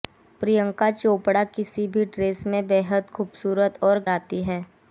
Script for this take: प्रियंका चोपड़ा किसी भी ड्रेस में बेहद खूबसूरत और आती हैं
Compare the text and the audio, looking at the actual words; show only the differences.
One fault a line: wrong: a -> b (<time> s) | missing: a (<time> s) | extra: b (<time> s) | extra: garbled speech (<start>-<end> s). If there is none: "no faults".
no faults